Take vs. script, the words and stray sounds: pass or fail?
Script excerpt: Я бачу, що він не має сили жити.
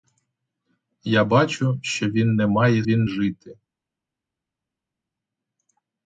fail